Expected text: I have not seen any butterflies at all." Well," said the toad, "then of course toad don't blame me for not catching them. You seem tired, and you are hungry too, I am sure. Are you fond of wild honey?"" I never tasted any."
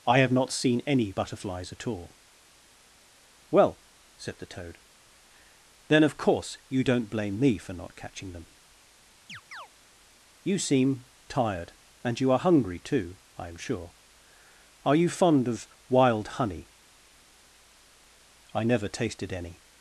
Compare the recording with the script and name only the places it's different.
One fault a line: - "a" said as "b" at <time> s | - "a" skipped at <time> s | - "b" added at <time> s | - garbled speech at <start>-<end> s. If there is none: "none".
- "toad" said as "you" at 6.7 s